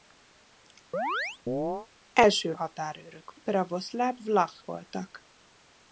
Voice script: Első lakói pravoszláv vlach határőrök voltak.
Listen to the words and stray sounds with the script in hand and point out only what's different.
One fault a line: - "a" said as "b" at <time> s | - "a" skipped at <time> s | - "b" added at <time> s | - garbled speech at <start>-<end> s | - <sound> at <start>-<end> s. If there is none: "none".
- chirp at 0.9-1.9 s
- "lakói" said as "határőrök" at 2.6 s
- "határőrök" skipped at 4.7 s